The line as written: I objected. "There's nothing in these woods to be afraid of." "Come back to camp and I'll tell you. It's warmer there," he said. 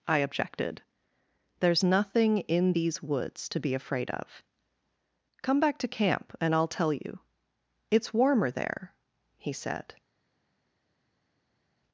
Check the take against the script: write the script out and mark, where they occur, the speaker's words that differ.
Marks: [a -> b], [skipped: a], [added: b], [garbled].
I objected. "There's nothing in these woods to be afraid of." "Come back to camp and I'll tell you. It's warmer there," he said.